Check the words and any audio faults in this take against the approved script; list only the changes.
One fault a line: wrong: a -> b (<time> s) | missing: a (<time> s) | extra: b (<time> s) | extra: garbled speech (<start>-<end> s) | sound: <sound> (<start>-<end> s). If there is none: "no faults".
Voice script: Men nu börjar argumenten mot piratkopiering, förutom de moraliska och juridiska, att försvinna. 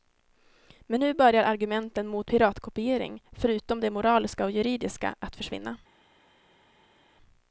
no faults